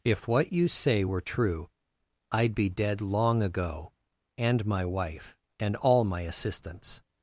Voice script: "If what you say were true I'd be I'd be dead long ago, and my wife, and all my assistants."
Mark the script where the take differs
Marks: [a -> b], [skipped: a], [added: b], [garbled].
"If what you say were true I'd be [skipped: I'd be] dead long ago, and my wife, and all my assistants."